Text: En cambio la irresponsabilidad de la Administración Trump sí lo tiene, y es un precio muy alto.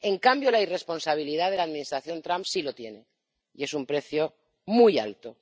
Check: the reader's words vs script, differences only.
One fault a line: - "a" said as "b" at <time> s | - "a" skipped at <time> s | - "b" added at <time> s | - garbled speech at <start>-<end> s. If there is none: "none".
none